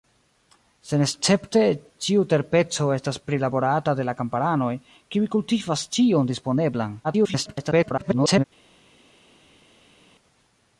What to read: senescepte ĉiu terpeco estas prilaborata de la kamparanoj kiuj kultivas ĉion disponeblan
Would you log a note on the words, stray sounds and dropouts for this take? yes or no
yes